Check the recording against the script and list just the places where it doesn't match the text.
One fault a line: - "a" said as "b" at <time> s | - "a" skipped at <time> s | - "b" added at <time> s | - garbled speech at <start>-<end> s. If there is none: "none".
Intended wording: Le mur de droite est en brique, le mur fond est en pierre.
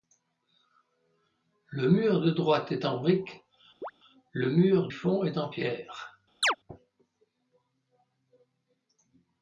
none